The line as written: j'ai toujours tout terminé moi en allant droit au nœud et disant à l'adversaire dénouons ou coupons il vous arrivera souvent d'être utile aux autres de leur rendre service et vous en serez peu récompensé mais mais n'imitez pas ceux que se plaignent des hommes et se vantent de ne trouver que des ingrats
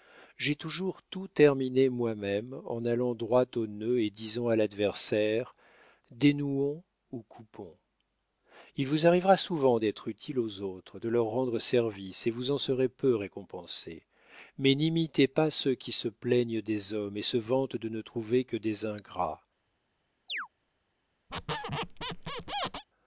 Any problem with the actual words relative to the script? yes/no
yes